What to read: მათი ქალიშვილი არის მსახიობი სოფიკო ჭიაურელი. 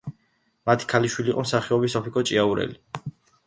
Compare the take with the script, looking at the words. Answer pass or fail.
fail